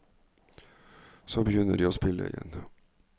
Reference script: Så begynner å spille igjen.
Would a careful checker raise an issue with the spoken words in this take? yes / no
yes